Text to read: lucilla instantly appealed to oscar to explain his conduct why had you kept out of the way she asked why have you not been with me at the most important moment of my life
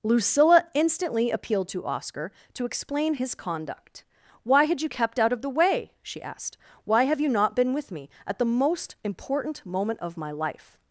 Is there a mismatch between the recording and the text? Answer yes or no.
no